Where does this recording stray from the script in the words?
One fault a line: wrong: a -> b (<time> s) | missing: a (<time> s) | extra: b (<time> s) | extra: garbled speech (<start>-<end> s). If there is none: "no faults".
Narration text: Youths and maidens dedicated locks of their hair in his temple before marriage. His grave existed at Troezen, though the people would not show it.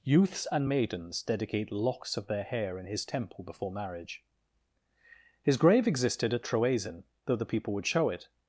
wrong: dedicated -> dedicate (1.2 s)
missing: not (7.9 s)